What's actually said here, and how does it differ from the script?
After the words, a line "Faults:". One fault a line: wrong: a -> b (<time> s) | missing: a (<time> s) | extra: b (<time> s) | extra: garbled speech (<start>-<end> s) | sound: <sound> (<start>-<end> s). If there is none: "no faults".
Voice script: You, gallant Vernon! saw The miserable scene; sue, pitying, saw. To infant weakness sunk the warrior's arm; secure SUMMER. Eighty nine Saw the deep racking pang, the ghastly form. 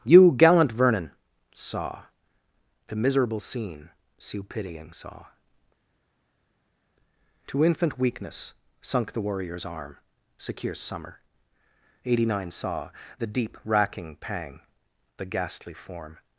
You, gallant Vernon! saw The miserable scene; sue, pitying, saw. To infant weakness sunk the warrior's arm; secure SUMMER. Eighty nine Saw the deep racking pang, the ghastly form.
Faults:
no faults